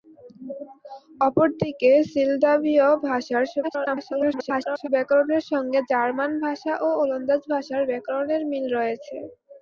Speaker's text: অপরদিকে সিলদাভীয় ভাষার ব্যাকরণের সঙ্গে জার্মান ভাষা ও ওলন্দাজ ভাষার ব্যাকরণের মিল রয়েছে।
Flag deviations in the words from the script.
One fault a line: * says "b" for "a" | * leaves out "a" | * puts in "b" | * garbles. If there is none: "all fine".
* garbles